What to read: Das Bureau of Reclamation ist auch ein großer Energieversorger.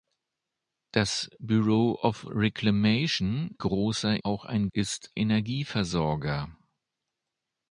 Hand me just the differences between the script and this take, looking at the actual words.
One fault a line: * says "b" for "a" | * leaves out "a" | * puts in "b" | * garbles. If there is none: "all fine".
* says "großer" for "ist"
* says "ist" for "großer"